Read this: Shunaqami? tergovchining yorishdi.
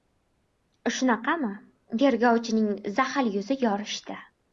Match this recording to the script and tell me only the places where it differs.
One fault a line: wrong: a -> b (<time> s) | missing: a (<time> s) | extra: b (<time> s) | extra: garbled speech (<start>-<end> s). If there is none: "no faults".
extra: zaxil yuzi (3.0 s)